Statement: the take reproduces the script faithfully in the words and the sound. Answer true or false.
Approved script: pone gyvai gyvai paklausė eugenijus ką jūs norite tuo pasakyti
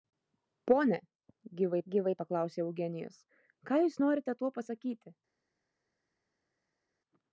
true